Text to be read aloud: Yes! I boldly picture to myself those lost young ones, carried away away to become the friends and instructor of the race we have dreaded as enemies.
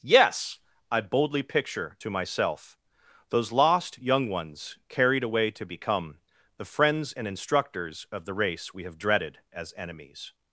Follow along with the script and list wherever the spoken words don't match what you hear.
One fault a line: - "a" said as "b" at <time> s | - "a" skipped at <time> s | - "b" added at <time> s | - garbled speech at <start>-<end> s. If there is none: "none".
- "away" skipped at 5.5 s
- "instructor" said as "instructors" at 7.3 s